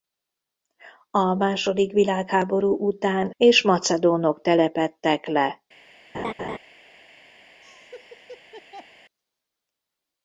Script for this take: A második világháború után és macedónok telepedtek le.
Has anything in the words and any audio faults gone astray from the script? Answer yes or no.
yes